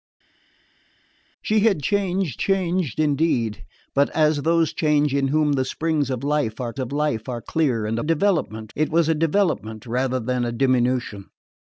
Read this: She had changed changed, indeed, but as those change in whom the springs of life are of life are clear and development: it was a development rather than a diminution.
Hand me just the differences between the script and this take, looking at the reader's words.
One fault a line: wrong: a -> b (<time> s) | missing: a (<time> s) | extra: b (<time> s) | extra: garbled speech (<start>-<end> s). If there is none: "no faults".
no faults